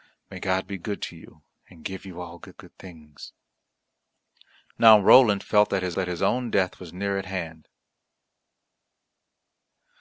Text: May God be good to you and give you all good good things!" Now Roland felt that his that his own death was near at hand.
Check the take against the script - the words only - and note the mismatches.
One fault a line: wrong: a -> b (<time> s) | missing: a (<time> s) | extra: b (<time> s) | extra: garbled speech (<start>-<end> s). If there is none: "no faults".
no faults